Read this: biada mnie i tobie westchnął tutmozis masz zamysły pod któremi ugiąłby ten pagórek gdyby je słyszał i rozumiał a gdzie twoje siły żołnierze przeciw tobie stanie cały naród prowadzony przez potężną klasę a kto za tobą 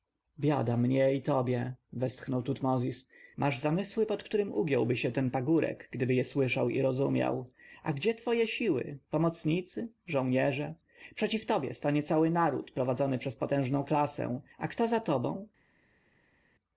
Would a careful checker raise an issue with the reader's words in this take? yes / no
yes